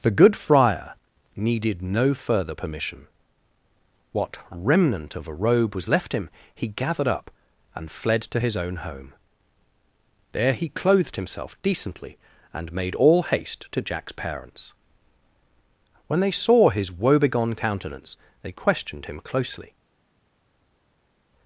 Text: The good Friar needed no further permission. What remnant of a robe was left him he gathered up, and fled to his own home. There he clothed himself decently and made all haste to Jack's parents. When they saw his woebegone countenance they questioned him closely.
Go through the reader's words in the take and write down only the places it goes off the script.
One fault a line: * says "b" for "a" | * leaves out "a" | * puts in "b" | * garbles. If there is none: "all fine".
all fine